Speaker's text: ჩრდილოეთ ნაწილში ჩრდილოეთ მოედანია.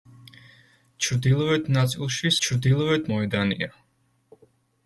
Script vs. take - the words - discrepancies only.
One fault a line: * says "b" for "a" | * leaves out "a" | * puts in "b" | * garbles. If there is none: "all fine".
all fine